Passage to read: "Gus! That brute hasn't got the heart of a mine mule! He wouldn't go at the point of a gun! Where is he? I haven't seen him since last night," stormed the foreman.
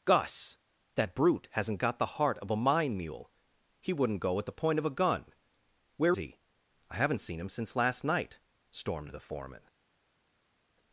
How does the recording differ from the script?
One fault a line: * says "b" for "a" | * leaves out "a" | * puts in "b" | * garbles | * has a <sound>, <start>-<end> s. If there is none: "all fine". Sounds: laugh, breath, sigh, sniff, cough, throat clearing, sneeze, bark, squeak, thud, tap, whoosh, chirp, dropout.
* leaves out "is"